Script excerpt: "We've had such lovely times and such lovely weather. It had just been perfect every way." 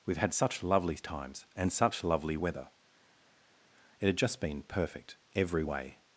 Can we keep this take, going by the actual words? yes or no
yes